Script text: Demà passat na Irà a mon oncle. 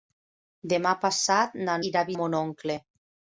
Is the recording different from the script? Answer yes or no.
no